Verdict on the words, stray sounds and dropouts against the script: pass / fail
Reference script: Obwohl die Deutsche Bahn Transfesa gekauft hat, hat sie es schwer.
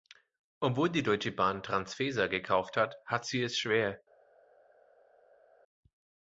pass